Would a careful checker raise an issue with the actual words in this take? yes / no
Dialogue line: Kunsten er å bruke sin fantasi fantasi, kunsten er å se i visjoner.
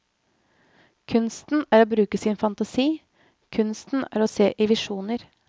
yes